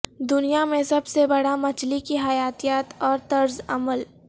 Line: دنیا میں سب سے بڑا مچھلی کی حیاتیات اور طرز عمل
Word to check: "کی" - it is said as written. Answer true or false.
true